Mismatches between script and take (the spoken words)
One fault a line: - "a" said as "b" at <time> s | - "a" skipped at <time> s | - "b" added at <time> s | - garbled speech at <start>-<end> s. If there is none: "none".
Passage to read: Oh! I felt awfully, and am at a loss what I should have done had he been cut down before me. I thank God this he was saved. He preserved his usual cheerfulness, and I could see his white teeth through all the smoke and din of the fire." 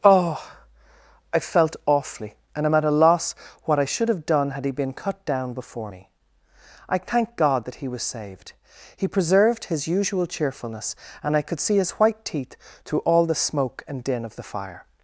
- "this" said as "that" at 7.6 s